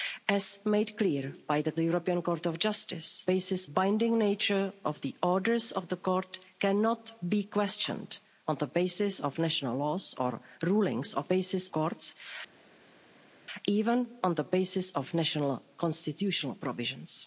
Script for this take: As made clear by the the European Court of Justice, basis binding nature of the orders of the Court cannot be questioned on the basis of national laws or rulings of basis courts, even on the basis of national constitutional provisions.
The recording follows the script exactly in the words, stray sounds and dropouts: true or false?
true